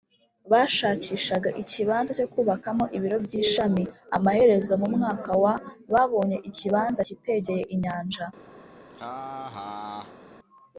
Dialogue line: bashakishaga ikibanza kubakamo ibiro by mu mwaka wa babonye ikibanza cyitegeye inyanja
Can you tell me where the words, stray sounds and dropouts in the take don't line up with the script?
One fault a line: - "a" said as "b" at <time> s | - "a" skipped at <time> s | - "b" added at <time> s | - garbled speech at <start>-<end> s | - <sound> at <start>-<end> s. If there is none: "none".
- "cyo" added at 2.2 s
- "ishami Amaherezo" added at 3.4 s
- laugh at 8.9-10.2 s